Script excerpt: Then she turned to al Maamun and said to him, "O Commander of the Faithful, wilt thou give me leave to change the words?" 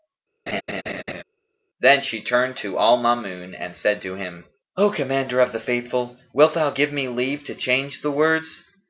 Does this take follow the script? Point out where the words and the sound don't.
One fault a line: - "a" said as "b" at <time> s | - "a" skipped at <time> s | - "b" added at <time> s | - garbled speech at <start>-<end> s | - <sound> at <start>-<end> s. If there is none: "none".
- laugh at 0.5-1.2 s